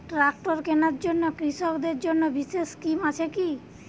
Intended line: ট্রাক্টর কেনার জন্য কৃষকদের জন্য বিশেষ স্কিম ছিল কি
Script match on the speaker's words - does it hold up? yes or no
no